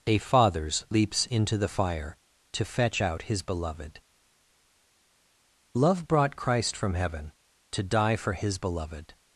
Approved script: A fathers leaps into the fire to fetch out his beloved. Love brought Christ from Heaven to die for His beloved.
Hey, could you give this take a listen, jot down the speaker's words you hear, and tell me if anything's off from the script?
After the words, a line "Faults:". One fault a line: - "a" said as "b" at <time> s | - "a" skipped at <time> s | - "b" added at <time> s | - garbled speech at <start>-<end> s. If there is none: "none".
A fathers leaps into the fire to fetch out his beloved. Love brought Christ from Heaven to die for His beloved.
Faults:
none